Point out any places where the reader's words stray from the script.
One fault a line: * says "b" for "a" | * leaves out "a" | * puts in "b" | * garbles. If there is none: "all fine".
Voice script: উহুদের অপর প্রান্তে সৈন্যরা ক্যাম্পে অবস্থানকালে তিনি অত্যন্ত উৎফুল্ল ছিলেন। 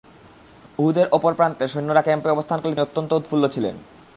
* leaves out "তিনি"